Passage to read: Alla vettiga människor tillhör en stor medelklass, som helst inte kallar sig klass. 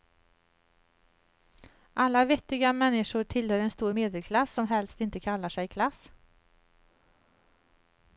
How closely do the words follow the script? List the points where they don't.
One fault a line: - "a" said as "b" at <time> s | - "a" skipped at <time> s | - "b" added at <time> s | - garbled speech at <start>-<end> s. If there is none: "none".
none